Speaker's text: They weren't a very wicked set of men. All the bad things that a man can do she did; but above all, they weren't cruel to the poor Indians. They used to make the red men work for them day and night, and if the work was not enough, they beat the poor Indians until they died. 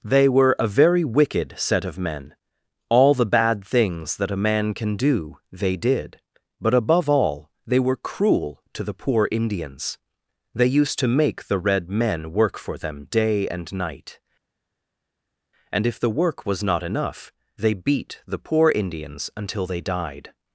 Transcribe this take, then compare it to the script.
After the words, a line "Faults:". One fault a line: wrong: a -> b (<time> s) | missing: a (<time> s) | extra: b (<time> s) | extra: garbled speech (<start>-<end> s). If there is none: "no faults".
They were a very wicked set of men. All the bad things that a man can do they did; but above all, they were cruel to the poor Indians. They used to make the red men work for them day and night, and if the work was not enough, they beat the poor Indians until they died.
Faults:
wrong: weren't -> were (0.3 s)
wrong: she -> they (5.5 s)
wrong: weren't -> were (7.8 s)